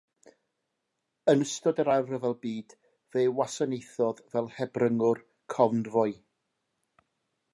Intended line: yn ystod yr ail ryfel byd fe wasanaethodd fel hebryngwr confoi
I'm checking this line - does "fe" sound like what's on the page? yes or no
yes